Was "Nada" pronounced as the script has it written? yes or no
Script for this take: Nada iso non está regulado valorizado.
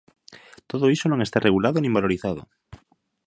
no